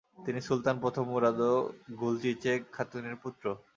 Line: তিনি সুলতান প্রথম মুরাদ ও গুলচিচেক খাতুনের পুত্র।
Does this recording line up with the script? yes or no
yes